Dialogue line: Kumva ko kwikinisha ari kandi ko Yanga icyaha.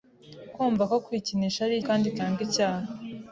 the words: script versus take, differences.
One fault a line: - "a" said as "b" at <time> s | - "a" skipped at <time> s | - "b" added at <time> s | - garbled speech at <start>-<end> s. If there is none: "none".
none